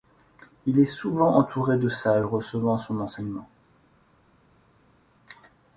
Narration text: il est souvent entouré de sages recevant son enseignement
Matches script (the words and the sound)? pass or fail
pass